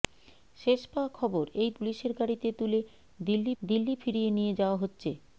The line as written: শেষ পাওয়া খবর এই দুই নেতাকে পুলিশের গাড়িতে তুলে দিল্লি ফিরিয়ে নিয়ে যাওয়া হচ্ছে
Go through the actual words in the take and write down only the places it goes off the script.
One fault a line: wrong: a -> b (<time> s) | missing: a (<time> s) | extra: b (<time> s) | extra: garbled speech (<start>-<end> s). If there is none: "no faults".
missing: দুই নেতাকে (1.7 s)
extra: দিল্লি (3.6 s)